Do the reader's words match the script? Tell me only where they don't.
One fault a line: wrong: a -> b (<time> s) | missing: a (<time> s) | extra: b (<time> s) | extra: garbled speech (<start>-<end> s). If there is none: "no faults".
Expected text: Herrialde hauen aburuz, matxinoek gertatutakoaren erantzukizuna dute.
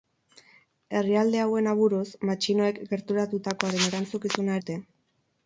no faults